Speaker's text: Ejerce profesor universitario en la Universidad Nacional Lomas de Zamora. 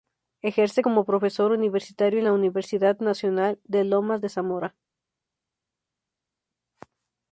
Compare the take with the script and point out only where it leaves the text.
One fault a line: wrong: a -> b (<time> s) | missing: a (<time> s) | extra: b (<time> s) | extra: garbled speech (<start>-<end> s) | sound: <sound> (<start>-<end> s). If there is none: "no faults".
extra: como (0.8 s)
extra: de (3.6 s)